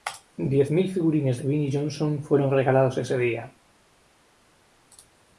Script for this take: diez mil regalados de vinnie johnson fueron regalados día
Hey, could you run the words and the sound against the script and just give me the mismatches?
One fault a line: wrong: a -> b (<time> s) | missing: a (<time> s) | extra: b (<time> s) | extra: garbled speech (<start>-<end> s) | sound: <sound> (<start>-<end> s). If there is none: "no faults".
wrong: regalados -> figurines (0.9 s)
extra: ese (3.0 s)